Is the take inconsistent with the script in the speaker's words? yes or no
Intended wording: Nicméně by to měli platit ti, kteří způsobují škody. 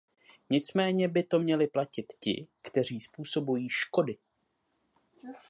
no